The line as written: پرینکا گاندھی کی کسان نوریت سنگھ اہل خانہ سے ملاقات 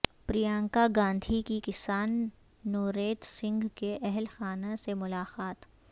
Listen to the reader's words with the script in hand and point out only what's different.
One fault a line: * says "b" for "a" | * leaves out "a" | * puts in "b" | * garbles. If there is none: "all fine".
* puts in "کے"